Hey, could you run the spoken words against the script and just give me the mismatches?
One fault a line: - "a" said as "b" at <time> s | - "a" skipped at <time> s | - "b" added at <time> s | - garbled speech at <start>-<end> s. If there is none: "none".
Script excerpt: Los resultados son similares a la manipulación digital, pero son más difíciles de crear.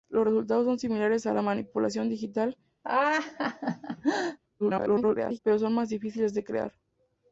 - garbled speech at 4.6-5.4 s